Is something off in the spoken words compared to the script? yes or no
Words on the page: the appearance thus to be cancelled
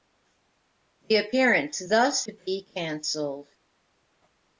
no